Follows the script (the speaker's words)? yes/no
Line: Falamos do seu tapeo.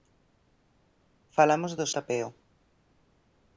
no